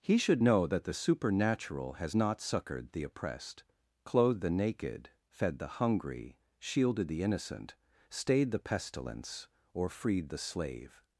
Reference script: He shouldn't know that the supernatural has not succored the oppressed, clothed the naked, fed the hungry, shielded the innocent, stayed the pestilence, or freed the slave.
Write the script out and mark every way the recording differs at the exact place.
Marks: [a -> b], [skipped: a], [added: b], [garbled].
He [shouldn't -> should] know that the supernatural has not succored the oppressed, clothed the naked, fed the hungry, shielded the innocent, stayed the pestilence, or freed the slave.